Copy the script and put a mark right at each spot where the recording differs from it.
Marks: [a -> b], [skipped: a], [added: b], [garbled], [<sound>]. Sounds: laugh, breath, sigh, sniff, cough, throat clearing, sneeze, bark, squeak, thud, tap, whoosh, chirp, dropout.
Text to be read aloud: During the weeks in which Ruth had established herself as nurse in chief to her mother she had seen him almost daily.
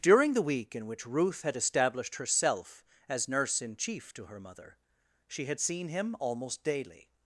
During the [weeks -> week] in which Ruth had established herself as nurse in chief to her mother she had seen him almost daily.